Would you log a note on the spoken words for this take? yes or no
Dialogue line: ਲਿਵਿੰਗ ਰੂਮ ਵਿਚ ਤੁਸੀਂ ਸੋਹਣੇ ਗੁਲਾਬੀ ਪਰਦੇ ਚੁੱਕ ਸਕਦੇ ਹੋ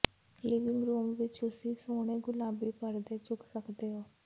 no